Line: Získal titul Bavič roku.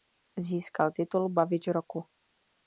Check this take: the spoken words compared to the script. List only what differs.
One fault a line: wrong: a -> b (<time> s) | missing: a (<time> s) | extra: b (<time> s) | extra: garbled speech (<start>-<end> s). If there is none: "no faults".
no faults